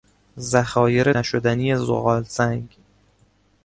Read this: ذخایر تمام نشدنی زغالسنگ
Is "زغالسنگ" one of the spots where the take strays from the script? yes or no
no